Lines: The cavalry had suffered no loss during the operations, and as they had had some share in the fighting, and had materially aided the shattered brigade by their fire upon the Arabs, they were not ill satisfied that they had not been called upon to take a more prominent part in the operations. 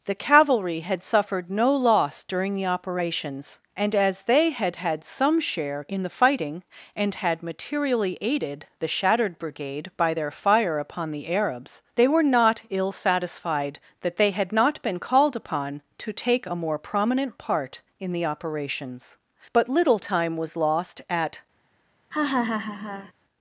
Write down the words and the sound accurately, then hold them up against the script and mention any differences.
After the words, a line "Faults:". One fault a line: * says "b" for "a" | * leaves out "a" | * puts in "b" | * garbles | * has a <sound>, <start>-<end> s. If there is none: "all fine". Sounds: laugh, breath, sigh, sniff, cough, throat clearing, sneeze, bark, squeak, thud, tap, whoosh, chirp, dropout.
The cavalry had suffered no loss during the operations, and as they had had some share in the fighting, and had materially aided the shattered brigade by their fire upon the Arabs, they were not ill satisfied that they had not been called upon to take a more prominent part in the operations. But little time was lost at
Faults:
* puts in "But little time was lost at"
* has a laugh, 22.1-23.1 s